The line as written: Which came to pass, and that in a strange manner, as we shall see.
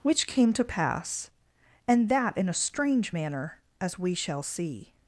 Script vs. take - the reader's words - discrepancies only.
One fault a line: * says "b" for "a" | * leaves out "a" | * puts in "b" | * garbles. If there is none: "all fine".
all fine